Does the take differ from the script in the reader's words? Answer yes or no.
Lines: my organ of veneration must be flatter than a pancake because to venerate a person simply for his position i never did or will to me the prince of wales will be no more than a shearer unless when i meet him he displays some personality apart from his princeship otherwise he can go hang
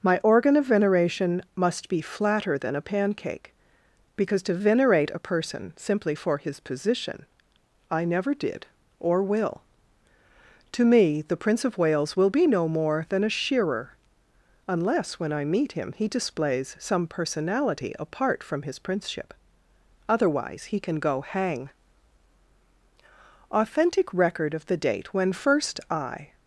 yes